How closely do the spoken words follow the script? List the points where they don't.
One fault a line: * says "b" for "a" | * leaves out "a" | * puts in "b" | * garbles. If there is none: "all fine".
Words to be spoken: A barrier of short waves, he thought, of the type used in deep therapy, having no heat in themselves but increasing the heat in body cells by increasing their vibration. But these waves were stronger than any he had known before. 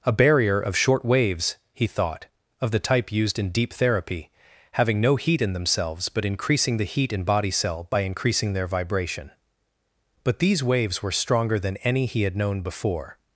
* says "cell" for "cells"